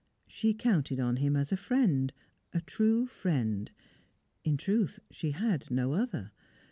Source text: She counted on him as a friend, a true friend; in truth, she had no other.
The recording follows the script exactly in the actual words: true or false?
true